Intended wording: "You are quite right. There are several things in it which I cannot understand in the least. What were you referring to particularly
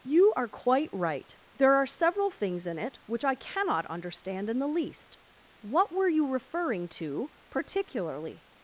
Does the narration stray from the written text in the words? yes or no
no